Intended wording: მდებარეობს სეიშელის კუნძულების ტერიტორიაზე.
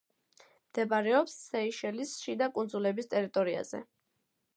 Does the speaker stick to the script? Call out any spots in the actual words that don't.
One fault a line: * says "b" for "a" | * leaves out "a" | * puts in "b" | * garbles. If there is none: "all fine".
* puts in "შიდა"